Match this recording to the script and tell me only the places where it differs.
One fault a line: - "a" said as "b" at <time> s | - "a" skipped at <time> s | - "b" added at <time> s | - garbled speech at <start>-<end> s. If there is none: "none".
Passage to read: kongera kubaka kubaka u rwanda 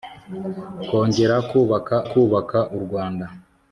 none